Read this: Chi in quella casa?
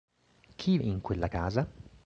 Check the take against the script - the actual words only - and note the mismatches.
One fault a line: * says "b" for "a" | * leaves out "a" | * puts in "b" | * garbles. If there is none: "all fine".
all fine